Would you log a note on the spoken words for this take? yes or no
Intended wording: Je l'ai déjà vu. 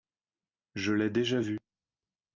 no